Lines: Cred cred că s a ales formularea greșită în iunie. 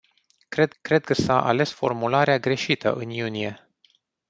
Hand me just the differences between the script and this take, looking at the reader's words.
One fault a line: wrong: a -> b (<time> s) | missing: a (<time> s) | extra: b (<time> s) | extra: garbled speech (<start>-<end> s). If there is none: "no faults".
no faults